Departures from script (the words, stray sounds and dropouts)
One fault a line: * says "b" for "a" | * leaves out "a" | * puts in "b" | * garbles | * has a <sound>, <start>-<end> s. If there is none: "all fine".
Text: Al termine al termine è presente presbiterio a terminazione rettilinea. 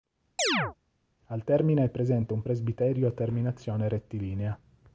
* has a chirp, 0.4-0.8 s
* leaves out "al termine"
* puts in "un"